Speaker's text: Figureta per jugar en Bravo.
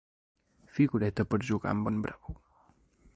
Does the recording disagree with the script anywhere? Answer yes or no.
yes